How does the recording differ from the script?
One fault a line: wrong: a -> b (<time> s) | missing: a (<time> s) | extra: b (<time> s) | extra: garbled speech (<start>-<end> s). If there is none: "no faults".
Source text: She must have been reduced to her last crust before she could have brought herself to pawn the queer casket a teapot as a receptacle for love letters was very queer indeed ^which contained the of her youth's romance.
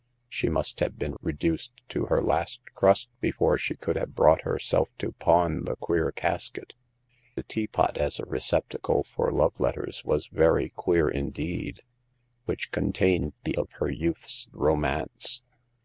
no faults